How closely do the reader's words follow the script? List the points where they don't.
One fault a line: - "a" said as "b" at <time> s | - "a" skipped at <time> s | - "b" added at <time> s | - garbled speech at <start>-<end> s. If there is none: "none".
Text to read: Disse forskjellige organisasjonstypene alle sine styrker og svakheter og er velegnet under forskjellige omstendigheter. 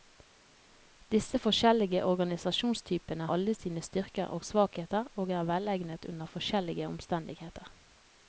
none